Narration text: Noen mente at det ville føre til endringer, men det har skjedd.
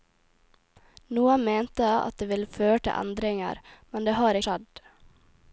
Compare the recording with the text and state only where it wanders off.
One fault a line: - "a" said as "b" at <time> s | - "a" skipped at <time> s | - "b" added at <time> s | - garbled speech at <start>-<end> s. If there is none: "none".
none